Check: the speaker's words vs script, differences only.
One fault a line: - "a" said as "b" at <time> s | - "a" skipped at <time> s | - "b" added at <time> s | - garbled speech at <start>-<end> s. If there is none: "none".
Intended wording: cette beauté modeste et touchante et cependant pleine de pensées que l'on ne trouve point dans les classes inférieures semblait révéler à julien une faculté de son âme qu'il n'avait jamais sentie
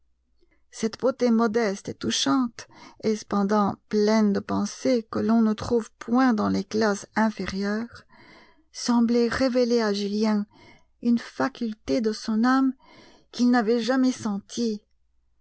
none